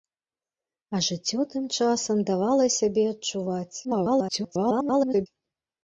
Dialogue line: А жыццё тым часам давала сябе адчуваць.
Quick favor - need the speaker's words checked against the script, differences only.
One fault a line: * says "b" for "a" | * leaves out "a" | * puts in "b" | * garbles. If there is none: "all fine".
* garbles